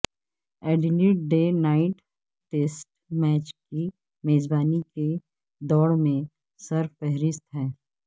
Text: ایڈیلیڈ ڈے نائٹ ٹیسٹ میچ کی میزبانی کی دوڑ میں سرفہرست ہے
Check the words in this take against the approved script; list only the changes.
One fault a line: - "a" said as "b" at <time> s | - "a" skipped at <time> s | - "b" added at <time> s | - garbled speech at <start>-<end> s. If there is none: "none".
none